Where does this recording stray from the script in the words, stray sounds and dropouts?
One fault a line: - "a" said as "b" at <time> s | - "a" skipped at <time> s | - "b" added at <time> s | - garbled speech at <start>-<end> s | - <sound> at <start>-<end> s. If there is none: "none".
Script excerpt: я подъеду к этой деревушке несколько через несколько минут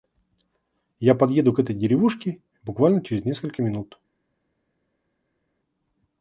- "несколько" said as "буквально" at 2.6 s